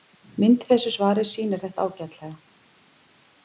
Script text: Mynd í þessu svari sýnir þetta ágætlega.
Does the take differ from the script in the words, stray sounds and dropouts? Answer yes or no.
no